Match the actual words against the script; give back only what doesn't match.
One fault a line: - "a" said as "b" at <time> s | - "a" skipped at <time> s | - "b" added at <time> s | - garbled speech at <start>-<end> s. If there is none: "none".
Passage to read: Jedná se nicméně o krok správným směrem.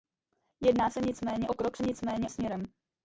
- "správným" said as "nicméně" at 1.8 s